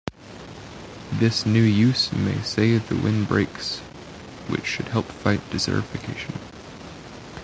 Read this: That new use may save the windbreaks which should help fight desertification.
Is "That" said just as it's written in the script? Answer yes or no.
no